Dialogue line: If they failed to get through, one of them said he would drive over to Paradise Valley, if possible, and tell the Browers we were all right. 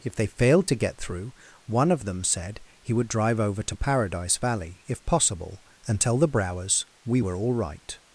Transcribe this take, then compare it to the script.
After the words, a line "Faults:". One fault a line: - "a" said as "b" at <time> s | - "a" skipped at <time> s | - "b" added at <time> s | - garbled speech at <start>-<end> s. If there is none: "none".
If they failed to get through, one of them said he would drive over to Paradise Valley, if possible, and tell the Browers we were all right.
Faults:
none